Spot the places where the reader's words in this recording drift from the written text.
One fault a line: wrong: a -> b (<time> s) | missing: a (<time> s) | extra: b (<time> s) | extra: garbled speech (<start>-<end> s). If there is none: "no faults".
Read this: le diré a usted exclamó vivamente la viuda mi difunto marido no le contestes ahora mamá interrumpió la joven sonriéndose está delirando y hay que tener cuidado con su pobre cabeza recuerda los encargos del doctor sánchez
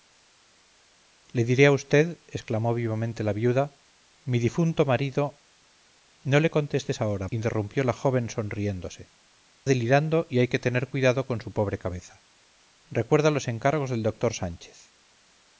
missing: mamá (7.3 s)
missing: está (9.1 s)